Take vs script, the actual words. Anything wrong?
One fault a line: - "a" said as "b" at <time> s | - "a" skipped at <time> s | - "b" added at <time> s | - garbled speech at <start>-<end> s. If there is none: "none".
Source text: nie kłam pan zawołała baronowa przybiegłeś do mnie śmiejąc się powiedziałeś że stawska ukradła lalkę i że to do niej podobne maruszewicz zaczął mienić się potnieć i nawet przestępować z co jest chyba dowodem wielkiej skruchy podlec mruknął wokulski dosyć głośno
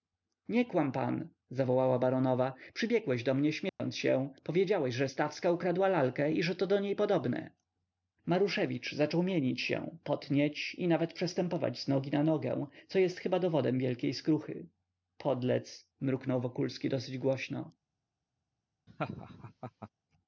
- "nogi na nogę" added at 11.9 s